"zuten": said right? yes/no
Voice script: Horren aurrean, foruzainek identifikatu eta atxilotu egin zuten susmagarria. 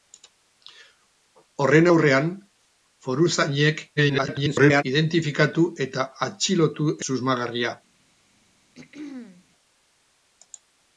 no